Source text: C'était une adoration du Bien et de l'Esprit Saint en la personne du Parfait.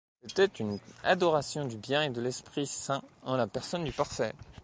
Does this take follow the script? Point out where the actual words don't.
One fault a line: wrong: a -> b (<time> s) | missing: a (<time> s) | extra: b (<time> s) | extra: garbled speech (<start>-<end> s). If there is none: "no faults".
no faults